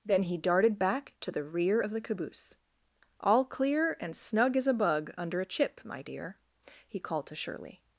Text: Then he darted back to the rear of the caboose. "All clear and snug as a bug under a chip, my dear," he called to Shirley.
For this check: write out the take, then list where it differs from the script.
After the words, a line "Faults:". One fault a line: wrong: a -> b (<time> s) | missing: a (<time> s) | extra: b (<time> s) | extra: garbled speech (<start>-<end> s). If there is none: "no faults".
Then he darted back to the rear of the caboose. "All clear and snug as a bug under a chip, my dear," he called to Shirley.
Faults:
no faults